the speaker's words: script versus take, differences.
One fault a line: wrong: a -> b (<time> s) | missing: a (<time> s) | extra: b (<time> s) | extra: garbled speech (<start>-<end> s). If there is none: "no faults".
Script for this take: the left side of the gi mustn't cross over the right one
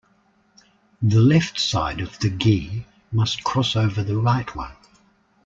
wrong: mustn't -> must (3.1 s)